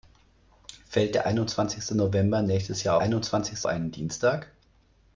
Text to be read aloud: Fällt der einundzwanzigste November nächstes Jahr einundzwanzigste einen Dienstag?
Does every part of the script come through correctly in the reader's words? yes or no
yes